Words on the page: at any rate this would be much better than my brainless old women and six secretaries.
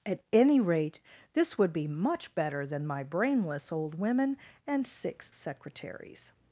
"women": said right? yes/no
yes